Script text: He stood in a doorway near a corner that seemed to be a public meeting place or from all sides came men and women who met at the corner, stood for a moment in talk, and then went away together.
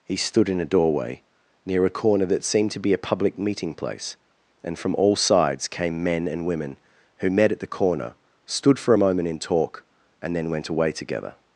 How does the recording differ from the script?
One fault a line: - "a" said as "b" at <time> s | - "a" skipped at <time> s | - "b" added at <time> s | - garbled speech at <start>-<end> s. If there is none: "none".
- "or" said as "and" at 4.6 s